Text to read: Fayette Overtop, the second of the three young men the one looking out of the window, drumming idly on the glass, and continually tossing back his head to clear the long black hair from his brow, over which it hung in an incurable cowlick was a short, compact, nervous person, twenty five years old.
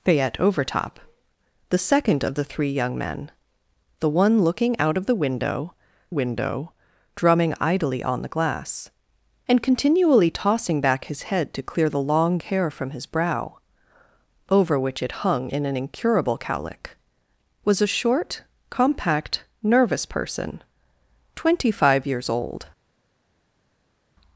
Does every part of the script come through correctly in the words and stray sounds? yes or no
no